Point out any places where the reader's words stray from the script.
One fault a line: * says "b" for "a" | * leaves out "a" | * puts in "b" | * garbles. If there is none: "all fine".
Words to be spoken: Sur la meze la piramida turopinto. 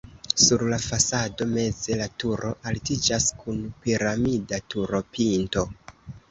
* puts in "fasado"
* puts in "turo altiĝas kun"